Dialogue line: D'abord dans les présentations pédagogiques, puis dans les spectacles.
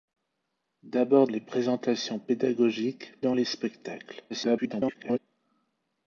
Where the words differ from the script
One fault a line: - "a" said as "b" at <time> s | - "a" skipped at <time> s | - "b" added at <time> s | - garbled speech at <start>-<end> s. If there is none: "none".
- "dans" skipped at 1.3 s
- "puis" skipped at 3.1 s
- garbled speech at 4.3-5.2 s